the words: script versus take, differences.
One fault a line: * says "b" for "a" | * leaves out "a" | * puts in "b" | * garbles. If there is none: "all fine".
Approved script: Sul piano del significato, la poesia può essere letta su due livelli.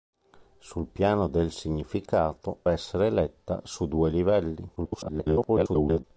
* leaves out "la poesia può"
* garbles